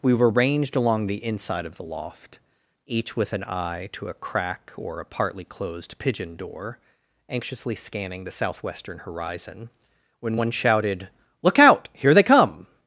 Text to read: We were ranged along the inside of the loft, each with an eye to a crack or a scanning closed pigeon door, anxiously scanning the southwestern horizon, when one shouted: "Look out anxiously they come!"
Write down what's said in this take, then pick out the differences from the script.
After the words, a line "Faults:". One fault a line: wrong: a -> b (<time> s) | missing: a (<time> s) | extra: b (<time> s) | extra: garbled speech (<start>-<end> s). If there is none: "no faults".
We were ranged along the inside of the loft, each with an eye to a crack or a partly closed pigeon door, anxiously scanning the southwestern horizon, when one shouted: "Look out here they come!"
Faults:
wrong: scanning -> partly (5.0 s)
wrong: anxiously -> here (11.9 s)